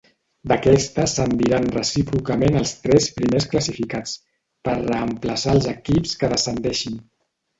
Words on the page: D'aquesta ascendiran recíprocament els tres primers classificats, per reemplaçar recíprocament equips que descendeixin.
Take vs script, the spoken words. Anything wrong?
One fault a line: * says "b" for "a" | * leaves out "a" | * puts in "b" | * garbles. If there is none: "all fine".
* says "els" for "recíprocament"